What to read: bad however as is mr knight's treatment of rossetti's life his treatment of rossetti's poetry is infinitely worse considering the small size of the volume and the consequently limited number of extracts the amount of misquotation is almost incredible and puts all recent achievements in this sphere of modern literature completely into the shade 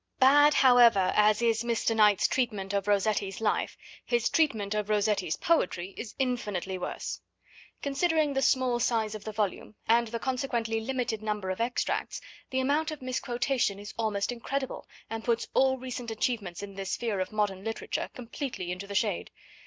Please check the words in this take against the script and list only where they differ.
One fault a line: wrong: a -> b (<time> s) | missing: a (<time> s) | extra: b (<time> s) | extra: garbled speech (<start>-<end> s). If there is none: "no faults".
no faults